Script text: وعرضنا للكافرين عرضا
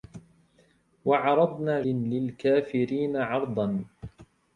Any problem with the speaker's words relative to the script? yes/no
no